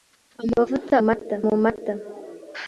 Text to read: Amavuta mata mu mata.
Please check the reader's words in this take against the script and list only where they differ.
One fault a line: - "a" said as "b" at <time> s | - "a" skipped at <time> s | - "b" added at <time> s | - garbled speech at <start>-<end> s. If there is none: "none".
none